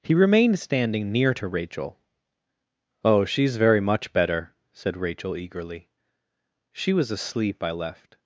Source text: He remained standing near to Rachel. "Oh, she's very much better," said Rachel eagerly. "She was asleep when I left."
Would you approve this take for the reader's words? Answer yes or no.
no